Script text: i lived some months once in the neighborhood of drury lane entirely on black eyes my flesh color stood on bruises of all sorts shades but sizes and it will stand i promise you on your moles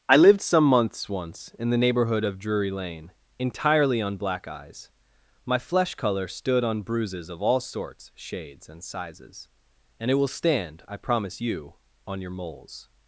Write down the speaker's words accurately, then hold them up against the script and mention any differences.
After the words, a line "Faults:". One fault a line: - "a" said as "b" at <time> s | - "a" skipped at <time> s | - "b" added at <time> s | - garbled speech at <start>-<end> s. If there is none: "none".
i lived some months once in the neighborhood of drury lane entirely on black eyes my flesh color stood on bruises of all sorts shades and sizes and it will stand i promise you on your moles
Faults:
- "but" said as "and" at 8.7 s